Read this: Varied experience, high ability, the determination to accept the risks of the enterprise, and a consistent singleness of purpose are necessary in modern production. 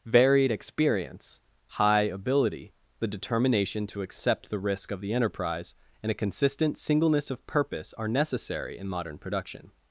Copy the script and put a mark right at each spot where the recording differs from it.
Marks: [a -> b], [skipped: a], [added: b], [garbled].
Varied experience, high ability, the determination to accept the [risks -> risk] of the enterprise, and a consistent singleness of purpose are necessary in modern production.